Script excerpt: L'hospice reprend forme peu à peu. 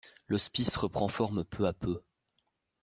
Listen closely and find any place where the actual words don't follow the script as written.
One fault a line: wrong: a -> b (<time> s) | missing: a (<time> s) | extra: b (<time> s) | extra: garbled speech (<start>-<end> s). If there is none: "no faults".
no faults